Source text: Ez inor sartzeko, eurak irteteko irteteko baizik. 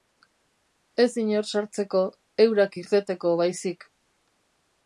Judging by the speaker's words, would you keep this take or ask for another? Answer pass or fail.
fail